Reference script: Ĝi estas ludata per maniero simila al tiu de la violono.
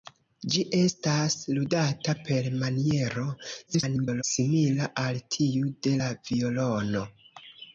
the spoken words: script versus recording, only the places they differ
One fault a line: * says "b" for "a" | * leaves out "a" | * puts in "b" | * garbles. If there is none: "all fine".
* garbles